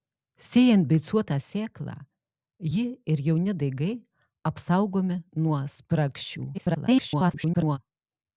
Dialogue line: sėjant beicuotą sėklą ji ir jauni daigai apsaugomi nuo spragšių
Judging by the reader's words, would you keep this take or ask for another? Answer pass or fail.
fail